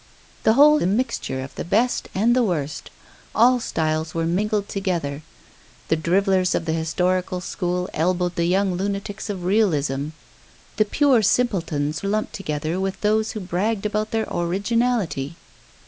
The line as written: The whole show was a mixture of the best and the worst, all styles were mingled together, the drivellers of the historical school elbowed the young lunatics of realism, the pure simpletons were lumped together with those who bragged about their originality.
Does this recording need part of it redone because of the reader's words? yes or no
yes